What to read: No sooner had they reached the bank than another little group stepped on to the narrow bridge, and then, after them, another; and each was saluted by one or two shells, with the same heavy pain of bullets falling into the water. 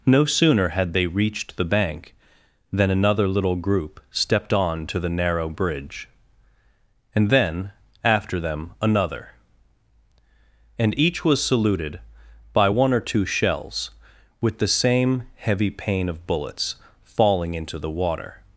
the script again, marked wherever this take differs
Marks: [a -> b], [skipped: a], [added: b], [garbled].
No sooner had they reached the bank than another little group stepped on to the narrow bridge, and then, after them, another; and each was saluted by one or two shells, with the same heavy pain of bullets falling into the water.